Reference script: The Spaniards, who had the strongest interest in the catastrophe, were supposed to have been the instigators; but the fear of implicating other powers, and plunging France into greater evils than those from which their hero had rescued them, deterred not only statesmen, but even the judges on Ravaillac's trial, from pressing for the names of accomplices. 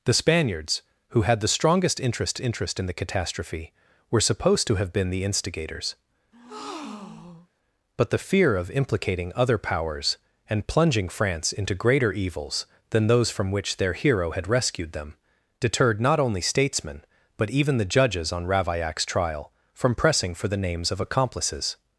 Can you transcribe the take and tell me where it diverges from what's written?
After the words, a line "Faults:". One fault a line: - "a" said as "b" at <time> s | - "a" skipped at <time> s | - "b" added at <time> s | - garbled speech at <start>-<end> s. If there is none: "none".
The Spaniards, who had the strongest interest interest in the catastrophe, were supposed to have been the instigators; but the fear of implicating other powers, and plunging France into greater evils than those from which their hero had rescued them, deterred not only statesmen, but even the judges on Ravaillac's trial, from pressing for the names of accomplices.
Faults:
- "interest" added at 2.4 s